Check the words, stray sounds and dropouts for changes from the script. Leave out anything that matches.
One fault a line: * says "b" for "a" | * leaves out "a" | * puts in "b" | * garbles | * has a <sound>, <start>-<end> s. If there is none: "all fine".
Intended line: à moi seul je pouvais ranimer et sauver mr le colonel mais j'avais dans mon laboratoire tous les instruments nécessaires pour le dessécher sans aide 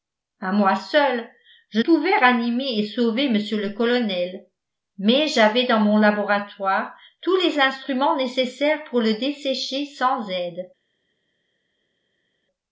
all fine